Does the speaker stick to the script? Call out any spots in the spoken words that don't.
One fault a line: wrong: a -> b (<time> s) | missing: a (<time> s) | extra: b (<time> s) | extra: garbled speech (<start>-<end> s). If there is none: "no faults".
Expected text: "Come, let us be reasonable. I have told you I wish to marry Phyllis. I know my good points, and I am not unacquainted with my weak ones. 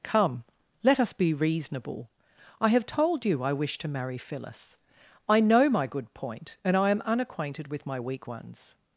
wrong: points -> point (6.1 s)
missing: not (7.0 s)